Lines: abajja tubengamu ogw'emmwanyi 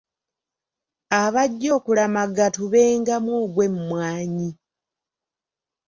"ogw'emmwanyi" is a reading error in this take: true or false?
false